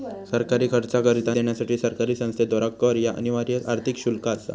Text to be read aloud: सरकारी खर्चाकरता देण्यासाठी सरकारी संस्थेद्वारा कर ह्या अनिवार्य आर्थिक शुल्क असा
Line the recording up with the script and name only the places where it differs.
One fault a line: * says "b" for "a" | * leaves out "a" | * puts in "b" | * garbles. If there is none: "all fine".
all fine